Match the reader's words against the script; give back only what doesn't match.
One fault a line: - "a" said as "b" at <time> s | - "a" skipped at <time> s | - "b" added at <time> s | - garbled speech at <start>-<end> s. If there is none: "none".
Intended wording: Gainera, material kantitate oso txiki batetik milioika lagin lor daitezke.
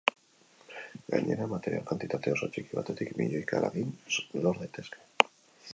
none